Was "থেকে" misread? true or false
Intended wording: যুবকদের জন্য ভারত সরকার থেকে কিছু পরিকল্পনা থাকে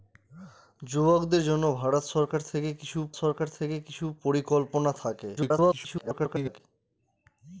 false